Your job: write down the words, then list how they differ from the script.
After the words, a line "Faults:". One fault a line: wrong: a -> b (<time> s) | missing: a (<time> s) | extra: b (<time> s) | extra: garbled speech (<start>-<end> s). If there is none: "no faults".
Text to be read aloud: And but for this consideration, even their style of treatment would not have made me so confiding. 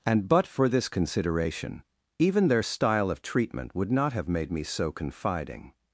And but for this consideration, even their style of treatment would not have made me so confiding.
Faults:
no faults